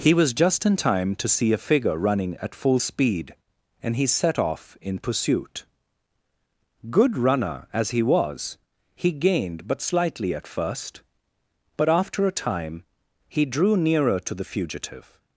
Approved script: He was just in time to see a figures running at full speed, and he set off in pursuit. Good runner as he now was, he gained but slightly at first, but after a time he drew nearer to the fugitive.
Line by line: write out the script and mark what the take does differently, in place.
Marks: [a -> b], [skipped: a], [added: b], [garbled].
He was just in time to see a [figures -> figure] running at full speed, and he set off in pursuit. Good runner as he [skipped: now] was, he gained but slightly at first, but after a time he drew nearer to the fugitive.